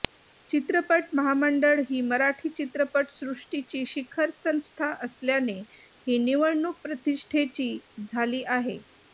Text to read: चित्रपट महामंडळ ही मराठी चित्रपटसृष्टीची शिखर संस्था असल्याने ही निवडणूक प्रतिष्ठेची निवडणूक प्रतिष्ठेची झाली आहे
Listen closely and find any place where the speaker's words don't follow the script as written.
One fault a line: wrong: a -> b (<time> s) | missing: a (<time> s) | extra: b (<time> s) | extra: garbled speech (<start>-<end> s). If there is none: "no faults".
missing: निवडणूक प्रतिष्ठेची (7.8 s)